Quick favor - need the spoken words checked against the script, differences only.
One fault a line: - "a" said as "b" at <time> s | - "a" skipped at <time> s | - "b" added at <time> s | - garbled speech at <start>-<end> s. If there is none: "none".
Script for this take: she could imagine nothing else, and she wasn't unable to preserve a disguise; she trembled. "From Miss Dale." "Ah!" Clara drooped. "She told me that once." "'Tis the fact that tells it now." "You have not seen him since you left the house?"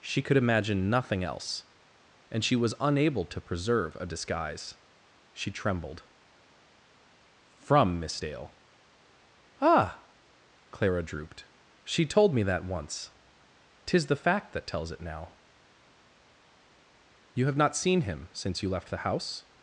- "wasn't" said as "was" at 2.5 s